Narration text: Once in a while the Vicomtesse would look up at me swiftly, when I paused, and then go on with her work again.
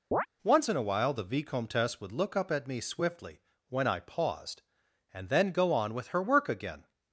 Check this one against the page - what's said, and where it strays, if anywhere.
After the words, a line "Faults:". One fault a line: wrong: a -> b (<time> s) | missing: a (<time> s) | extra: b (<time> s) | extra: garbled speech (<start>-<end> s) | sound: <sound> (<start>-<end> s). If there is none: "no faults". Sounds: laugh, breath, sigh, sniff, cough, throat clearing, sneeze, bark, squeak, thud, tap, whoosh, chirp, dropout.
Once in a while the Vicomtesse would look up at me swiftly, when I paused, and then go on with her work again.
Faults:
sound: chirp (0.1-0.3 s)